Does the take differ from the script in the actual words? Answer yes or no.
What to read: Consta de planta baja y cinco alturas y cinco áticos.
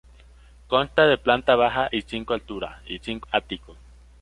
no